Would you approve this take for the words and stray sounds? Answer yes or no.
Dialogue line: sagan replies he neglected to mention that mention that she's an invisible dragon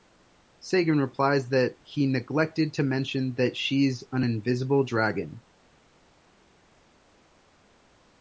no